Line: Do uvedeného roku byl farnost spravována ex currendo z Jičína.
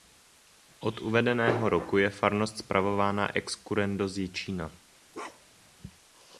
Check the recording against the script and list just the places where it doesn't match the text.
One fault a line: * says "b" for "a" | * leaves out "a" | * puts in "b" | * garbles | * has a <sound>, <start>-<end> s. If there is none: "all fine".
* says "Od" for "Do"
* says "je" for "byl"
* has a bark, 5.1-5.7 s